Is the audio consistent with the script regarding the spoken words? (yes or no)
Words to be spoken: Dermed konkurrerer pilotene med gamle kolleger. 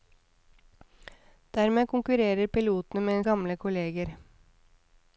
yes